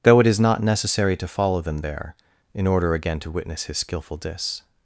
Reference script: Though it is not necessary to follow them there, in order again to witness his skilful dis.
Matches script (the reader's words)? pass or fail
pass